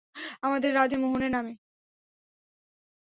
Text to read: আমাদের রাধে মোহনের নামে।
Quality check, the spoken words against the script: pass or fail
pass